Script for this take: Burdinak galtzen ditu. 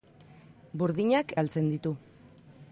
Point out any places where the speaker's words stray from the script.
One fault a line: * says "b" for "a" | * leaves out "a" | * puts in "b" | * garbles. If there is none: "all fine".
all fine